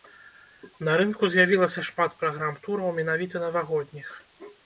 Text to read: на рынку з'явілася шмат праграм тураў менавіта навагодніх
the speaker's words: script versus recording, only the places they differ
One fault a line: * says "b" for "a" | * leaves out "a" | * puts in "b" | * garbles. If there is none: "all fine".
all fine